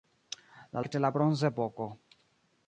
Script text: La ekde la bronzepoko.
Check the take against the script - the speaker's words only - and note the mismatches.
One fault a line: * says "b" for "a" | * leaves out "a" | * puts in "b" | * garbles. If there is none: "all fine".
all fine